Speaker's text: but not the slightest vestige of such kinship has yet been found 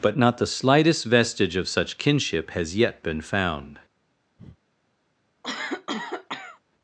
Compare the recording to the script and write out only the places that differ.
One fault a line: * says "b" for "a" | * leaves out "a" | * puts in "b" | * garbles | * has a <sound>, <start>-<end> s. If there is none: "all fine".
* has a breath, 4.4-4.6 s
* has a cough, 5.4-6.6 s